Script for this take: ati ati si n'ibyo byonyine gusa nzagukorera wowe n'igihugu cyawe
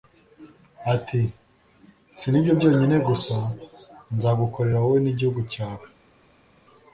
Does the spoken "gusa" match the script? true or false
true